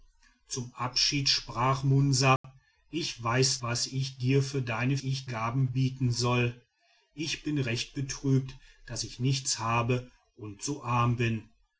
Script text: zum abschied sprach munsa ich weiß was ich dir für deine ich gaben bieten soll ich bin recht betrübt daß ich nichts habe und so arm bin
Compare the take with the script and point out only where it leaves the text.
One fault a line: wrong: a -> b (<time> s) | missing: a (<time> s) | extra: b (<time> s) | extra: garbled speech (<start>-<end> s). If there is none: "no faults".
no faults